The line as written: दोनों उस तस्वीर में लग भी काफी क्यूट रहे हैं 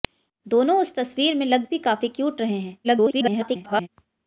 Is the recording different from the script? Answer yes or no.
yes